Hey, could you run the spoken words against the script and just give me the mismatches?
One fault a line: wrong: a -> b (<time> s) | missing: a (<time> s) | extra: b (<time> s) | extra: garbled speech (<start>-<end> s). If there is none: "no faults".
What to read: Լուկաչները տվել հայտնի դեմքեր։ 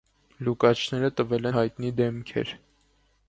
no faults